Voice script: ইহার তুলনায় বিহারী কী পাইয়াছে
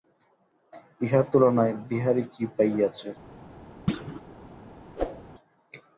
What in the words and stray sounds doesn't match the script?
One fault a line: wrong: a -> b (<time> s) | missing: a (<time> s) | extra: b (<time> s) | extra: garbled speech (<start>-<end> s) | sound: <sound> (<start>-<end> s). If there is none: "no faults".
sound: thud (3.9-4.2 s)
sound: whoosh (5.0-5.2 s)